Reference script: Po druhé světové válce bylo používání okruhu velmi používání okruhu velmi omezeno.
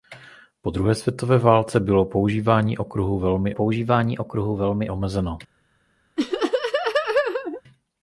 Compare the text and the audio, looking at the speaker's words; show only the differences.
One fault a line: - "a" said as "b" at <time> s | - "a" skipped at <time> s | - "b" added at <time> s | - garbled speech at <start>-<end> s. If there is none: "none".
none